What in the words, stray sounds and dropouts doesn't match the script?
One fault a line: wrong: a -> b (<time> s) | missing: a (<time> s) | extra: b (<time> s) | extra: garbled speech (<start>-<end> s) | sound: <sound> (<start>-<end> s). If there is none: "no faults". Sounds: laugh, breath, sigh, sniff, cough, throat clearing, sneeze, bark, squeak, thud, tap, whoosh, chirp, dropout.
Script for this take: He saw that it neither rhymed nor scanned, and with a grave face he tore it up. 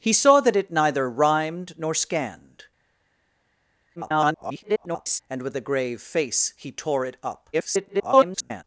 extra: garbled speech (4.0-5.2 s)
extra: garbled speech (7.5-8.6 s)